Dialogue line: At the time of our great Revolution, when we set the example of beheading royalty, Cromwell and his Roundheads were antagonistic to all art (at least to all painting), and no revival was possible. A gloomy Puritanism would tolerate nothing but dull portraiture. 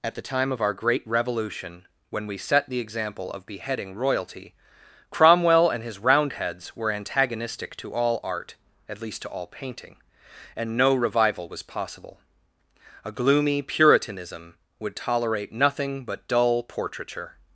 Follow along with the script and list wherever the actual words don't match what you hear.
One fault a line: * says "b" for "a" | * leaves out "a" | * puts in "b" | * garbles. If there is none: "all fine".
all fine